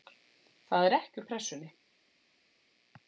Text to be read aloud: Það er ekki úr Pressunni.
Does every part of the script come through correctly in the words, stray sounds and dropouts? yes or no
yes